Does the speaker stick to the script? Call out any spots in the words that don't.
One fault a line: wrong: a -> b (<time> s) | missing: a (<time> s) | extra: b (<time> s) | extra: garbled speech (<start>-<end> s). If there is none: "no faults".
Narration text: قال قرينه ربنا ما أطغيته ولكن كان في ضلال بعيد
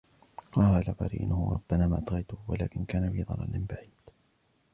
no faults